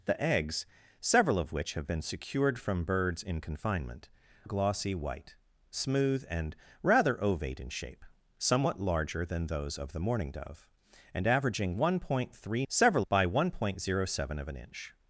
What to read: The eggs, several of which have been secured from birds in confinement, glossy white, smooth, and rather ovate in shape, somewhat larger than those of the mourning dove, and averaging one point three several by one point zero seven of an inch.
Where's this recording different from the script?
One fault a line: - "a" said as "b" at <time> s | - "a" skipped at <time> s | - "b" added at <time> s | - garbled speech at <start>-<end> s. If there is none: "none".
none